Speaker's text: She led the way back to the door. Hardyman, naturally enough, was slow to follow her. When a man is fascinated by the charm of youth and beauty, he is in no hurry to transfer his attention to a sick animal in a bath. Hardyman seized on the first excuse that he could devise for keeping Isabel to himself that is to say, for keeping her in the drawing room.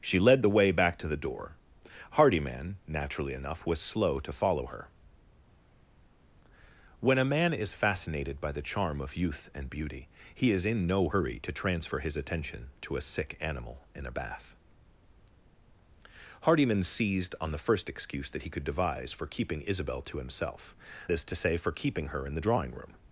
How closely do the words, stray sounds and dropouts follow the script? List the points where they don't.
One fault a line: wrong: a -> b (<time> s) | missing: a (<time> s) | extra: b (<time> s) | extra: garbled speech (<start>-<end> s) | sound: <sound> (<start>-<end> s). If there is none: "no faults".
missing: that (20.7 s)